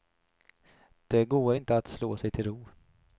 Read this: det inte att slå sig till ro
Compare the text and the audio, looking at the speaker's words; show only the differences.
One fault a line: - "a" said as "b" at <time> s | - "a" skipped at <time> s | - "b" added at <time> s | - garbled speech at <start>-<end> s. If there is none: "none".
- "går" added at 1.2 s